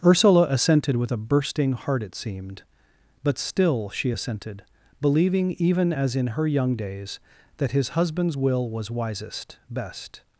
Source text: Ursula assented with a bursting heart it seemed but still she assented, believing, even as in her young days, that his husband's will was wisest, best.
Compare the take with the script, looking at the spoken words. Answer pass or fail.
pass